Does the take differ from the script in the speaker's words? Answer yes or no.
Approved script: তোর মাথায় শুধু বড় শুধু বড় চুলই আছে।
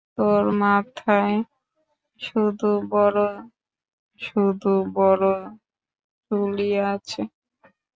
no